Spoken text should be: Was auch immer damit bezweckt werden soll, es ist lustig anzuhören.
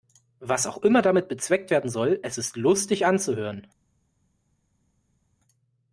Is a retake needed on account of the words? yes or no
no